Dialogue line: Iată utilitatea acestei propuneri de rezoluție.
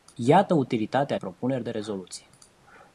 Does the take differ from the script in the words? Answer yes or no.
yes